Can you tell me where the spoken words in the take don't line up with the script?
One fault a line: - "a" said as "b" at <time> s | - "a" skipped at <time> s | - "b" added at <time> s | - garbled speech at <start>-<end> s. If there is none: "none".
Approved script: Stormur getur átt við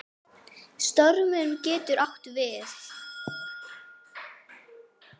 none